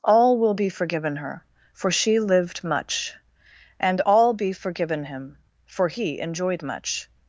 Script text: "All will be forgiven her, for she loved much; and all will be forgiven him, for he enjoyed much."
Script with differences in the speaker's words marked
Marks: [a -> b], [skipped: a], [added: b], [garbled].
"All will be forgiven her, for she [loved -> lived] much; and all [skipped: will] be forgiven him, for he enjoyed much."